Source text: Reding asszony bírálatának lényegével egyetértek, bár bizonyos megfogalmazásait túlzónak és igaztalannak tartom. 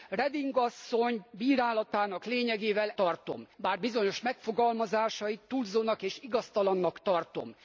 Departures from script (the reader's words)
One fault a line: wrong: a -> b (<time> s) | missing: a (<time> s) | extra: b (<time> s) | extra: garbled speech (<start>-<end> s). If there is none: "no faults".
wrong: egyetértek -> tartom (2.9 s)